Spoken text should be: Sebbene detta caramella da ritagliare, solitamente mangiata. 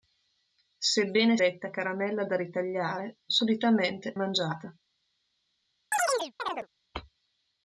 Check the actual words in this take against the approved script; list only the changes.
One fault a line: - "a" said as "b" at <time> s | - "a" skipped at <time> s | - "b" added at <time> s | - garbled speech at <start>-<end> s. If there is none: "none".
none